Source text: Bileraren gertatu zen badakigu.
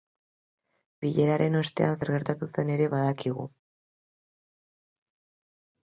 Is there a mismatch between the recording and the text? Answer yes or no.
yes